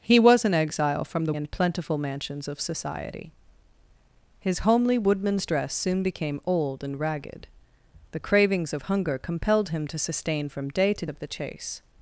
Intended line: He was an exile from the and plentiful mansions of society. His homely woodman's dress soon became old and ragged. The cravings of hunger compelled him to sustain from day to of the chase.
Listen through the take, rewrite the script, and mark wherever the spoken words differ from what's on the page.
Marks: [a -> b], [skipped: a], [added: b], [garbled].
He was an exile from the and plentiful mansions of society. His homely woodman's dress soon became old and ragged. The cravings of hunger compelled him to sustain from day to of the chase.